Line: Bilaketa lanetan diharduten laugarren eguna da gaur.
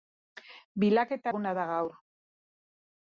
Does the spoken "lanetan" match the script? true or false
false